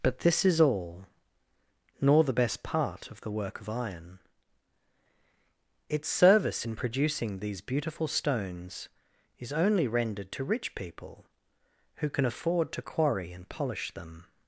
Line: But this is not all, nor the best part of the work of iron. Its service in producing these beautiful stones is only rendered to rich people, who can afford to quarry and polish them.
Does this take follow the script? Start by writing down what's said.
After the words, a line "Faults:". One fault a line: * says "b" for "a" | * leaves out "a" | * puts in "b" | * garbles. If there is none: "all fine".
But this is all, nor the best part of the work of iron. Its service in producing these beautiful stones is only rendered to rich people, who can afford to quarry and polish them.
Faults:
* leaves out "not"